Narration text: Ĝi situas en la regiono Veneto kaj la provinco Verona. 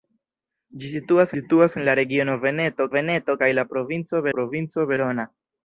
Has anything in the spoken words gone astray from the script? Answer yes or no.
yes